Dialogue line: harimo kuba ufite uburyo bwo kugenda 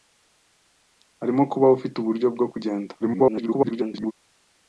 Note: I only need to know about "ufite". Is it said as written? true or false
true